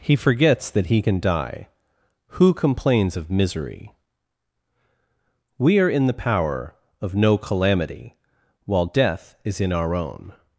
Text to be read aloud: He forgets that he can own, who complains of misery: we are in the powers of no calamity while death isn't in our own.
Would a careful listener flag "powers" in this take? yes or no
yes